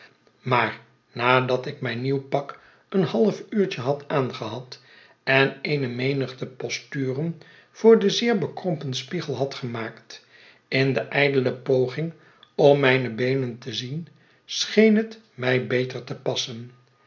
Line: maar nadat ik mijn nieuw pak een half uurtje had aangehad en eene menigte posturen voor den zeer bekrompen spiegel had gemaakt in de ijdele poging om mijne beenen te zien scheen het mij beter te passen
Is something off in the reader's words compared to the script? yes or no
no